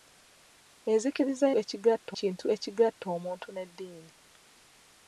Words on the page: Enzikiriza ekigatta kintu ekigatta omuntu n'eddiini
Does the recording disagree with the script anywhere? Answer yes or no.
no